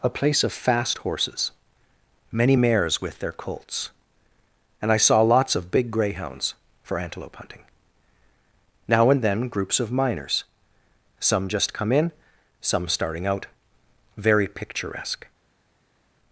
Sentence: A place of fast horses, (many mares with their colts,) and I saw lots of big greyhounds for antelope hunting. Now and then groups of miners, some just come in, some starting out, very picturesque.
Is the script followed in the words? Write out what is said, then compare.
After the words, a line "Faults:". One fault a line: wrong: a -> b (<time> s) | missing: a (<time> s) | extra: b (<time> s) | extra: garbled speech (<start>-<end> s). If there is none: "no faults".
A place of fast horses, (many mares with their colts,) and I saw lots of big greyhounds for antelope hunting. Now and then groups of miners, some just come in, some starting out, very picturesque.
Faults:
no faults